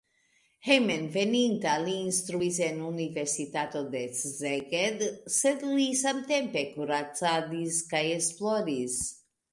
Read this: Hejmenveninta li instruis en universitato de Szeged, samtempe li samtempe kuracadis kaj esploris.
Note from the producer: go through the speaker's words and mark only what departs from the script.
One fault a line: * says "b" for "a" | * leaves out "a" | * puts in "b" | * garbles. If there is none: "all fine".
* says "sed" for "samtempe"